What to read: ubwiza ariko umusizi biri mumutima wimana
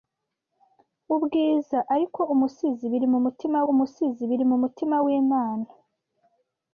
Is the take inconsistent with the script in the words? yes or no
yes